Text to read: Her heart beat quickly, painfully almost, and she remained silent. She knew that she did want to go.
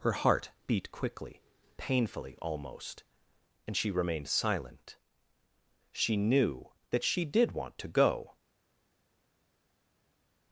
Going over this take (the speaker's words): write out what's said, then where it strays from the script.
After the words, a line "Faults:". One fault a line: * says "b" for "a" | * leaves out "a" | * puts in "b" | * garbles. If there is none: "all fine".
Her heart beat quickly, painfully almost, and she remained silent. She knew that she did want to go.
Faults:
all fine